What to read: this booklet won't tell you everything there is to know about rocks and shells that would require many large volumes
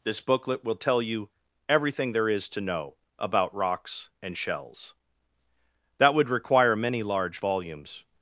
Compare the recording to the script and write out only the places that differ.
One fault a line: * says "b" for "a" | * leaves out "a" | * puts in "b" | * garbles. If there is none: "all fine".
* says "will" for "won't"